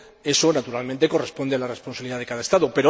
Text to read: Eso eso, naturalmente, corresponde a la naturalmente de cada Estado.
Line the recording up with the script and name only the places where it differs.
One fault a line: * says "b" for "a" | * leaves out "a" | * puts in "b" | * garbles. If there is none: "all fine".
* leaves out "eso"
* says "responsabilidad" for "naturalmente"